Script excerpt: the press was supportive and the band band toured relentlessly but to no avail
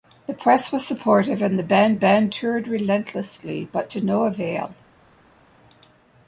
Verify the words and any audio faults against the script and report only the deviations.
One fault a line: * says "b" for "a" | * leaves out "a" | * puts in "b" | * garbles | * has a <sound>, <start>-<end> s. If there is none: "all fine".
all fine